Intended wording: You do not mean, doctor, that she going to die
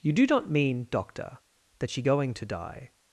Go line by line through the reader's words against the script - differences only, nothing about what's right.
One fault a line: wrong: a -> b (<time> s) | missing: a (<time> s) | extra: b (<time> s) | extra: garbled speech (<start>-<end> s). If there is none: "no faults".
no faults